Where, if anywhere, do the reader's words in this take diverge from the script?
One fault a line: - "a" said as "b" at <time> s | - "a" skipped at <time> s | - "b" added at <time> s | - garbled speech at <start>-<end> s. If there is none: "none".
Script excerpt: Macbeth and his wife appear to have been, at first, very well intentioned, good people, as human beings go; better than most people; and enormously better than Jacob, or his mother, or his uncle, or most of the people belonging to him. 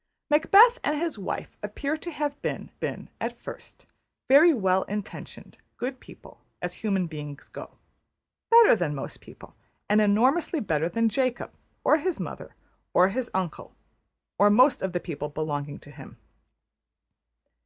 - "been" added at 2.8 s